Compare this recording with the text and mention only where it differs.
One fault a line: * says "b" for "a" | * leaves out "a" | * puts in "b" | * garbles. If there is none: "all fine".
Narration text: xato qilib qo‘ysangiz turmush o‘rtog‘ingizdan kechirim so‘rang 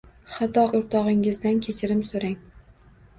* leaves out "qilib qo‘ysangiz turmush"